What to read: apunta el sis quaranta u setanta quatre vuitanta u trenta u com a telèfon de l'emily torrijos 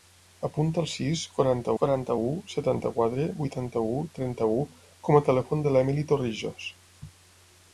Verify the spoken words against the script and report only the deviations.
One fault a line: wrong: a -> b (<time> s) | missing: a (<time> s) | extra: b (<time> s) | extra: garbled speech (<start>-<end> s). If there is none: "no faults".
extra: quaranta (1.8 s)